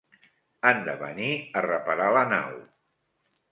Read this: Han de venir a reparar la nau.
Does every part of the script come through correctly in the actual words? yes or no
yes